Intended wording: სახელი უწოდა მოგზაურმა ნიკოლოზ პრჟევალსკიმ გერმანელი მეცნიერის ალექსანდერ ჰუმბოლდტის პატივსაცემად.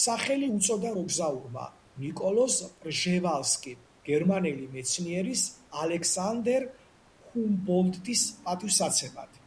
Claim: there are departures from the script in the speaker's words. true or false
false